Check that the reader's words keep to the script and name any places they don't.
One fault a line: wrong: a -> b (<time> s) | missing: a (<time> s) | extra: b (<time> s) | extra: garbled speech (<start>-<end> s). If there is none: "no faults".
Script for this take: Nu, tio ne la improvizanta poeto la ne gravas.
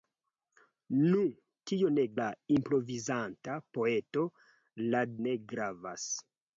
no faults